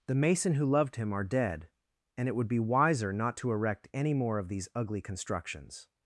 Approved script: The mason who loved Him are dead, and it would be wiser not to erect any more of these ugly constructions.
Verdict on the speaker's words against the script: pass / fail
pass